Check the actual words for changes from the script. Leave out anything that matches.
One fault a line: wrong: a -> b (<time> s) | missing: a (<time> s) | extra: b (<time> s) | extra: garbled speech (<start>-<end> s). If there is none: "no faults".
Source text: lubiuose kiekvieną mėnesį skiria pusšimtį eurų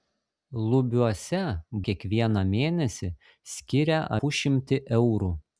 no faults